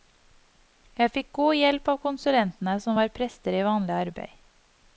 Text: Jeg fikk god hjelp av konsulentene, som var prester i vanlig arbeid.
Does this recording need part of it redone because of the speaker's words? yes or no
no